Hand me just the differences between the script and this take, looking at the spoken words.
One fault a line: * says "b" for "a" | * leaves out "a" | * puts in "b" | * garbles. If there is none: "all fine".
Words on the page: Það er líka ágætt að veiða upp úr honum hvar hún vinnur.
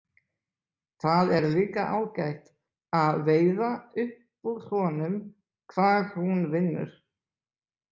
all fine